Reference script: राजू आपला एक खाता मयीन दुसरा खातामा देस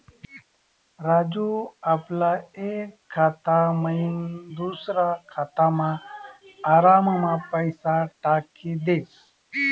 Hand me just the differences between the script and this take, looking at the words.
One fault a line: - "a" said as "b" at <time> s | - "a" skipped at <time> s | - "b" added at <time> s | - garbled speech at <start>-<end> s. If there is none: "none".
- "आराममा पैसा टाकी" added at 6.7 s